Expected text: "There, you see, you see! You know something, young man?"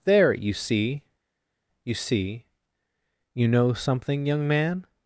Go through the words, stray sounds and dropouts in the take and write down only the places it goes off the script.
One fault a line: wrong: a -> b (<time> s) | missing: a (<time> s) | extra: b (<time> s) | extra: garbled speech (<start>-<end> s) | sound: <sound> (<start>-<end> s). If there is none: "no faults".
no faults